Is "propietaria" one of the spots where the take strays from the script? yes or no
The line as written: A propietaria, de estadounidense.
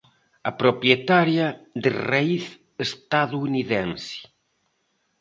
no